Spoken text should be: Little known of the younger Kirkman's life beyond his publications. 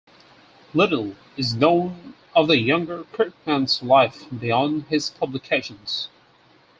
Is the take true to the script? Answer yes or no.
no